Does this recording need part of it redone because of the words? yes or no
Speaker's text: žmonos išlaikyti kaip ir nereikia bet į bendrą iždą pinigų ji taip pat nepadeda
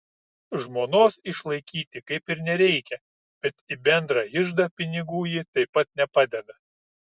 no